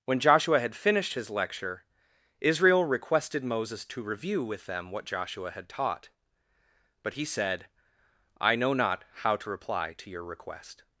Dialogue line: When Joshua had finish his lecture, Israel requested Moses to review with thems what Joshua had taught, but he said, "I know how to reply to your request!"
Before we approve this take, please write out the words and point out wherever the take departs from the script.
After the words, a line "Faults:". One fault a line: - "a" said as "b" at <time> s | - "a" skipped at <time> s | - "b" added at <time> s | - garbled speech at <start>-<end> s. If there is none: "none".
When Joshua had finished his lecture, Israel requested Moses to review with them what Joshua had taught, but he said, "I know not how to reply to your request!"
Faults:
- "finish" said as "finished" at 0.8 s
- "thems" said as "them" at 4.7 s
- "not" added at 8.7 s